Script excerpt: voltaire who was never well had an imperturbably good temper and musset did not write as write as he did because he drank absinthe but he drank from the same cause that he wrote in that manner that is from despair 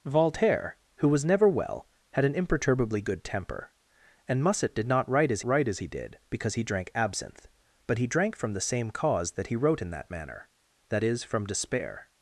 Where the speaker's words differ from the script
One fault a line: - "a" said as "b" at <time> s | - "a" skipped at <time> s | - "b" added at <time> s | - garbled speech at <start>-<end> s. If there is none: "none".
none